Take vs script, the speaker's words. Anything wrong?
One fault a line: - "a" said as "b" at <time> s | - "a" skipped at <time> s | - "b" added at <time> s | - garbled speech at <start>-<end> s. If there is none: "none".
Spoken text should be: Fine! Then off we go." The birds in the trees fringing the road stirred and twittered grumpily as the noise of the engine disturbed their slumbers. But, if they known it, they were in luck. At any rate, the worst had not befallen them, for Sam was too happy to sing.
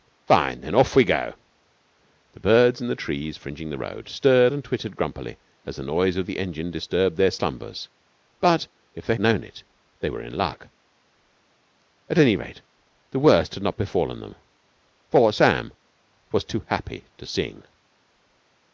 none